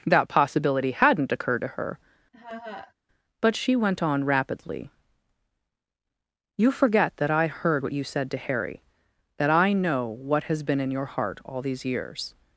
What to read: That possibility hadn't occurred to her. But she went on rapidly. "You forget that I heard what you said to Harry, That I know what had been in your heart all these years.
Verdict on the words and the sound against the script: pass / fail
fail